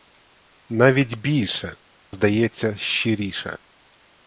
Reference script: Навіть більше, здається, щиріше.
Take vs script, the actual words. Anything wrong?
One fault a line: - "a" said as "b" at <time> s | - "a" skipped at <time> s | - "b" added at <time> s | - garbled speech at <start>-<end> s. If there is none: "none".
none